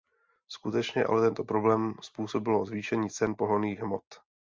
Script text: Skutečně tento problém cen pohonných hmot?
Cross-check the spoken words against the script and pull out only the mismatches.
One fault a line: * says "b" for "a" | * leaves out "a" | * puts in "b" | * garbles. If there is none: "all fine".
* puts in "ale"
* puts in "způsobilo zvýšení"